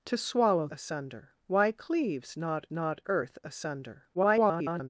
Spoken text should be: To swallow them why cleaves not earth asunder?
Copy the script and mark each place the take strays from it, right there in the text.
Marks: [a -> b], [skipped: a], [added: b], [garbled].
To swallow [them -> asunder] why cleaves not [added: not] earth asunder? [garbled]